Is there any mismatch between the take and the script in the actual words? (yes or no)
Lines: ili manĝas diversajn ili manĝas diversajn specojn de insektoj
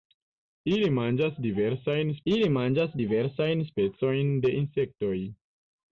no